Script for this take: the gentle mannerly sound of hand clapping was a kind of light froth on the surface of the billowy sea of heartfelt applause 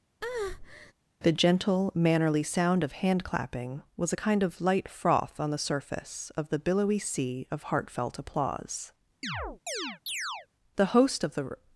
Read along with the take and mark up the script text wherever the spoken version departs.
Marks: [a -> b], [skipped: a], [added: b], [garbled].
the gentle mannerly sound of hand clapping was a kind of light froth on the surface of the billowy sea of heartfelt applause [added: the host of the]